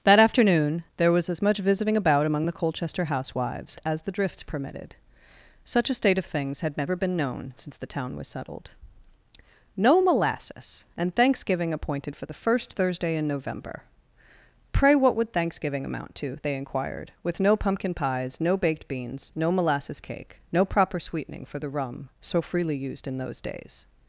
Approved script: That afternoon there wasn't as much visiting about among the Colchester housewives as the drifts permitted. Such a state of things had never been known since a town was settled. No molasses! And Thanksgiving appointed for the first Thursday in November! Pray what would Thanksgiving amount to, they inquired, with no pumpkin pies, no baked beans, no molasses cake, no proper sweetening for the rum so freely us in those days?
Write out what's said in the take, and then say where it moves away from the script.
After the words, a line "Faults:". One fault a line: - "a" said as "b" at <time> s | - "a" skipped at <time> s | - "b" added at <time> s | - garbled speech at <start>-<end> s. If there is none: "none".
That afternoon there was as much visiting about among the Colchester housewives as the drifts permitted. Such a state of things had never been known since the town was settled. No molasses! And Thanksgiving appointed for the first Thursday in November! Pray what would Thanksgiving amount to, they inquired, with no pumpkin pies, no baked beans, no molasses cake, no proper sweetening for the rum so freely used in those days?
Faults:
- "wasn't" said as "was" at 1.1 s
- "a" said as "the" at 7.8 s
- "us" said as "used" at 22.8 s